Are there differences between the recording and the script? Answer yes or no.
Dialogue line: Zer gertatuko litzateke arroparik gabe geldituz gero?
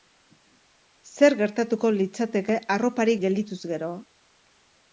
yes